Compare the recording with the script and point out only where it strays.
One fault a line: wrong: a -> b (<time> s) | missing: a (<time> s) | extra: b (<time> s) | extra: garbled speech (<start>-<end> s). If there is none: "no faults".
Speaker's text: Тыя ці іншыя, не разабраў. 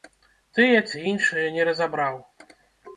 no faults